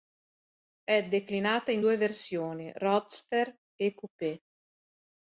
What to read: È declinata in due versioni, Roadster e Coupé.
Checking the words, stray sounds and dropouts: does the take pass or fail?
pass